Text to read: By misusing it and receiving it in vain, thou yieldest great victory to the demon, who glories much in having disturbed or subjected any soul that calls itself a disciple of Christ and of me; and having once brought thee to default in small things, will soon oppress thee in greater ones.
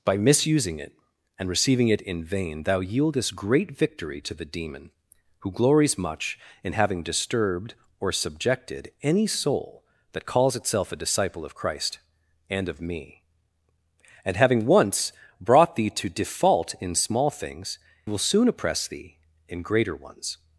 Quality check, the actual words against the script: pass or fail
pass